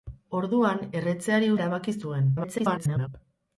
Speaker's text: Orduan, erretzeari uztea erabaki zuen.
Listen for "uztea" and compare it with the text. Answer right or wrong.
wrong